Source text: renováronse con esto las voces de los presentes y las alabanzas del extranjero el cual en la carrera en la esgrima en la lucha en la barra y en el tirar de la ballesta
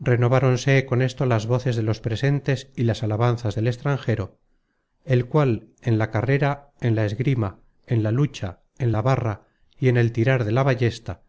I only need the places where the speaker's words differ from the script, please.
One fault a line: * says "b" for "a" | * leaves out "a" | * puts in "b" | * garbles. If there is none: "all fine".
all fine